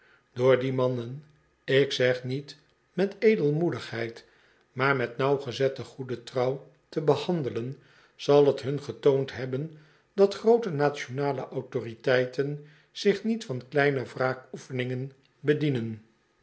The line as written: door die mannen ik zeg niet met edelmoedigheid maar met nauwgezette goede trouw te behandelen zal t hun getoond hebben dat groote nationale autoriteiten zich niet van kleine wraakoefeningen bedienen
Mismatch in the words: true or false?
false